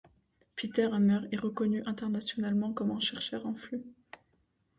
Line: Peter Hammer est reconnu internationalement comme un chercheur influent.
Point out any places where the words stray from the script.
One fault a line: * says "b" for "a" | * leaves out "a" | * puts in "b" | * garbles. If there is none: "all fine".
all fine